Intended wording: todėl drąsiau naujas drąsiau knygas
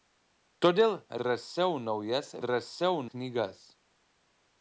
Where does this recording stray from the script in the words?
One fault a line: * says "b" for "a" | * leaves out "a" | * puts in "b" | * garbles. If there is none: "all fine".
all fine